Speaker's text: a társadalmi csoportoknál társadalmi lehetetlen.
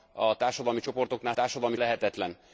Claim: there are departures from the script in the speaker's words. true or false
false